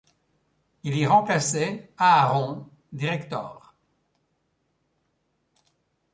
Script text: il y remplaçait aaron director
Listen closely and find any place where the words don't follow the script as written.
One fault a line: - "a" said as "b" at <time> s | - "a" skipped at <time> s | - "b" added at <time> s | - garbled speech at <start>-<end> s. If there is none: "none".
none